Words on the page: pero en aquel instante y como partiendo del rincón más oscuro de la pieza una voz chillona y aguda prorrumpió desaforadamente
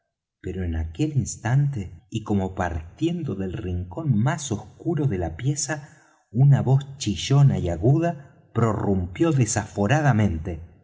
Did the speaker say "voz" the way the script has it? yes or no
yes